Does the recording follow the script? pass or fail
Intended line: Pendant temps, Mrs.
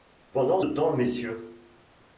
pass